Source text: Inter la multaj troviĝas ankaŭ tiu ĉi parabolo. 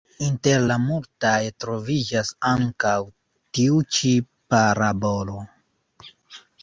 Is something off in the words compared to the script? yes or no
no